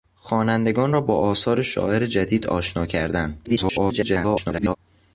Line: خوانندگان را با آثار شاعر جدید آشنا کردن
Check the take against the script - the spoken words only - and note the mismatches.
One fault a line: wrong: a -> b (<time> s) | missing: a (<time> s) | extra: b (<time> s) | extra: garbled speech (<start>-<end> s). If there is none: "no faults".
extra: garbled speech (3.4-4.8 s)